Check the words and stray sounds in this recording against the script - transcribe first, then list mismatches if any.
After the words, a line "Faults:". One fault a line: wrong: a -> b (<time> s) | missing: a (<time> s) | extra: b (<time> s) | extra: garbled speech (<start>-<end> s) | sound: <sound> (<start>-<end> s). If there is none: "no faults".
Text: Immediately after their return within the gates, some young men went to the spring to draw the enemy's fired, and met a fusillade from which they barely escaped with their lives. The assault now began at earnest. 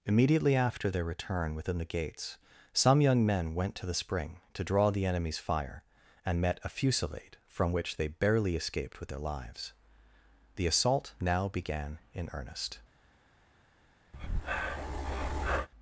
Immediately after their return within the gates, some young men went to the spring to draw the enemy's fire, and met a fusillade from which they barely escaped with their lives. The assault now began in earnest.
Faults:
wrong: fired -> fire (5.4 s)
wrong: at -> in (12.1 s)
sound: breath (14.1-15.7 s)